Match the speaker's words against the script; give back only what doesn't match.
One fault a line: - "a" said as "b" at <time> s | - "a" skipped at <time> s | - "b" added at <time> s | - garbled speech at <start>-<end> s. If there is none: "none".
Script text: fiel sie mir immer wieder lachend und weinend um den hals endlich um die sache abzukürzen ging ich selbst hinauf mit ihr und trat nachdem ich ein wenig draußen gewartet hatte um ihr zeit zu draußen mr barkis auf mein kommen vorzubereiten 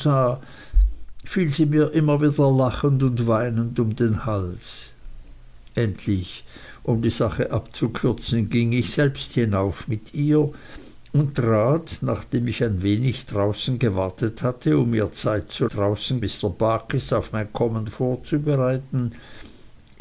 none